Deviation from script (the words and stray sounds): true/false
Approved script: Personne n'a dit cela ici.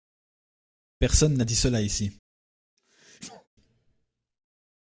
true